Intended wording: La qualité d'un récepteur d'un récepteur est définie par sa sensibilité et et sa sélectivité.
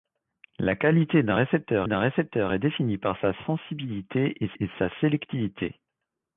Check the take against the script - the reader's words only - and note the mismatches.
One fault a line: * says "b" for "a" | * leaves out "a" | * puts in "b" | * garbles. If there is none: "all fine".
all fine